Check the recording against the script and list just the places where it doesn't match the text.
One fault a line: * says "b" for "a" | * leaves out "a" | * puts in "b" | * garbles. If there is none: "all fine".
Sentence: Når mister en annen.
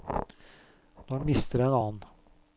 all fine